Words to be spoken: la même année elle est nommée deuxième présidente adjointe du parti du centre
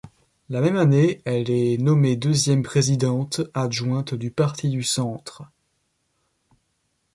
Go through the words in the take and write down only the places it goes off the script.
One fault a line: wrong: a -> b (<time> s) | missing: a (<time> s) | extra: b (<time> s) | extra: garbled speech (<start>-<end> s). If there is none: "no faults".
no faults